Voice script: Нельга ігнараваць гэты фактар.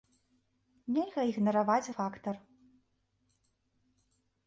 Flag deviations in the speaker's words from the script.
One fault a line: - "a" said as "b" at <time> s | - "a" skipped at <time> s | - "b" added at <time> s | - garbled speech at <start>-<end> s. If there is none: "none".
- "гэты" skipped at 1.9 s